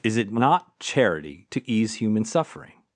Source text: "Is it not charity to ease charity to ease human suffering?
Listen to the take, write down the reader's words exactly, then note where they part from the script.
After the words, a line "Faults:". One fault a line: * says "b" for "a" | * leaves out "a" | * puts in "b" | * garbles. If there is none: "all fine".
"Is it not charity to ease human suffering?
Faults:
* leaves out "charity to ease"